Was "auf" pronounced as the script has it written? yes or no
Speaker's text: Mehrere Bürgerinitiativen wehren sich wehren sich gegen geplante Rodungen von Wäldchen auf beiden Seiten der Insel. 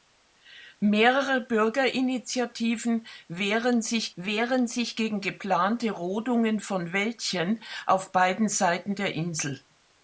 yes